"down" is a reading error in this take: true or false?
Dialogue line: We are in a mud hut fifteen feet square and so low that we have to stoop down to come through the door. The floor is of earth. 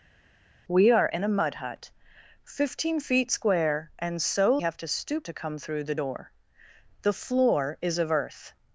true